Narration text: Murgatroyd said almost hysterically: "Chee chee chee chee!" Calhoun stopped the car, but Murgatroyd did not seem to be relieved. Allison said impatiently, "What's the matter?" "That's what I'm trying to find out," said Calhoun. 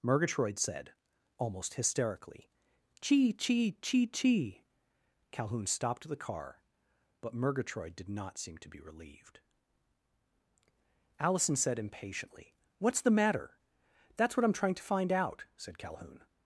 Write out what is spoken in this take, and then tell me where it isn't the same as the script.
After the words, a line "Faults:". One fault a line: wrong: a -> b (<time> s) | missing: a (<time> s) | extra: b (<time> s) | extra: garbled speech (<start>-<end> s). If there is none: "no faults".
Murgatroyd said almost hysterically: "Chee chee chee chee!" Calhoun stopped the car, but Murgatroyd did not seem to be relieved. Allison said impatiently, "What's the matter?" "That's what I'm trying to find out," said Calhoun.
Faults:
no faults